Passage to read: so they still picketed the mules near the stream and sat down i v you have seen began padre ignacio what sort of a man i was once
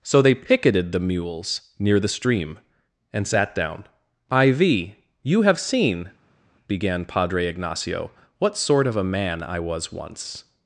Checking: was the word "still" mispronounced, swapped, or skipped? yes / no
yes